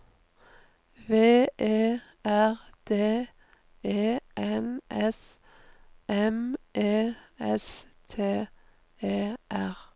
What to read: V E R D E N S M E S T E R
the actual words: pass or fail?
pass